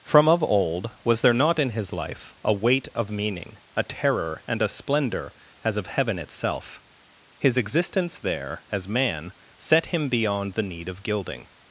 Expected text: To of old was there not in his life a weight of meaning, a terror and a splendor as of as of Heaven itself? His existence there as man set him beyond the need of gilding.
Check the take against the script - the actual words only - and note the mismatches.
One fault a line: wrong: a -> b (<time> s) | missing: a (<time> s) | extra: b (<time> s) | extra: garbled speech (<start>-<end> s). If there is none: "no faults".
wrong: To -> From (0.0 s)
missing: as of (5.9 s)